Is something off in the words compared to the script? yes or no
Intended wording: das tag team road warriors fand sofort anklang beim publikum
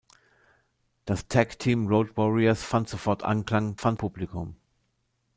yes